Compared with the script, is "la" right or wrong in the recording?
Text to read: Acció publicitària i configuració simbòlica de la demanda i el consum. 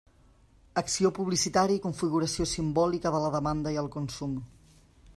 right